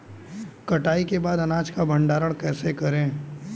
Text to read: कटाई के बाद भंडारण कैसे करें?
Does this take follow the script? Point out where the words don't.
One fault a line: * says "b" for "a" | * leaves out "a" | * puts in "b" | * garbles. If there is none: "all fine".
* puts in "अनाज का"